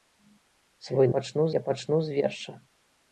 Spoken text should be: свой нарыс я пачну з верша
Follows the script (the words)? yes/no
no